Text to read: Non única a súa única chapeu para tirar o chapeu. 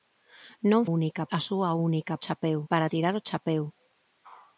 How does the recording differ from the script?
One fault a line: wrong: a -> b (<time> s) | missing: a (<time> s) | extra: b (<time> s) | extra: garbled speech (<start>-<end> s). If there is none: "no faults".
no faults